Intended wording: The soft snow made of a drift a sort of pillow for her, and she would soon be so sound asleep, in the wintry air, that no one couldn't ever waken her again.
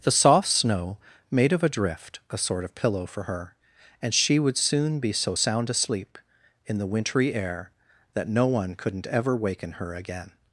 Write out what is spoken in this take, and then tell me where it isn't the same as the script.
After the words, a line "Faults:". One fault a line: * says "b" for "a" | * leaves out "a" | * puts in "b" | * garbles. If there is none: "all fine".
The soft snow made of a drift a sort of pillow for her, and she would soon be so sound asleep, in the wintry air, that no one couldn't ever waken her again.
Faults:
all fine